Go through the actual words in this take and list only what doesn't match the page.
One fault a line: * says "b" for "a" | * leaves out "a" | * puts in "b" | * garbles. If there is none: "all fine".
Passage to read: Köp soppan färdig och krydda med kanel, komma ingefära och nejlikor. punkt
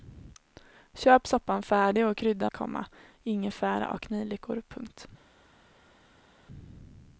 * leaves out "med kanel"